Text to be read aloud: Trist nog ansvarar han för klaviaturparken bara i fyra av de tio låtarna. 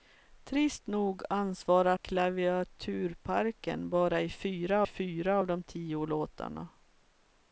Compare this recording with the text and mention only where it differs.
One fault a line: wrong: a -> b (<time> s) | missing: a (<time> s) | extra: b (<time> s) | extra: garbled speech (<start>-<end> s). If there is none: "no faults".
missing: han för (2.0 s)
extra: fyra (4.8 s)